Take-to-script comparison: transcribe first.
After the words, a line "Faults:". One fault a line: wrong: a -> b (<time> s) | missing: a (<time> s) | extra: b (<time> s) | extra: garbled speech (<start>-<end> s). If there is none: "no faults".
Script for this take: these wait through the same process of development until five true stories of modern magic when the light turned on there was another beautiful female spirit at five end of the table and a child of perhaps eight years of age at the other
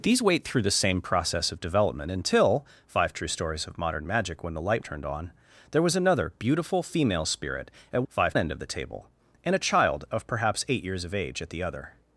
these wait through the same process of development until five true stories of modern magic when the light turned on there was another beautiful female spirit at five end of the table and a child of perhaps eight years of age at the other
Faults:
no faults